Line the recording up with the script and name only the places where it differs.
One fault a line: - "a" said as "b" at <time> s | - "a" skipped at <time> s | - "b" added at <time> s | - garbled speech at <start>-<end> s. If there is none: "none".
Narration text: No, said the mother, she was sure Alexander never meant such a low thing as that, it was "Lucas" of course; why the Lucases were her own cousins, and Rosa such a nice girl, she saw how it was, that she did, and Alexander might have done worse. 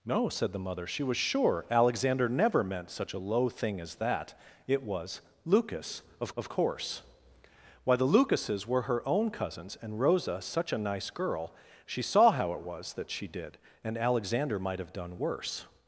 - "of" added at 6.4 s